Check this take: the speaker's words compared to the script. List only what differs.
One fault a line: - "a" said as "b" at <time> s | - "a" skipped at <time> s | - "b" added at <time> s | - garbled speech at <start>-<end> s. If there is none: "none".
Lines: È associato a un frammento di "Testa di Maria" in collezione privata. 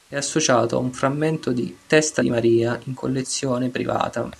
none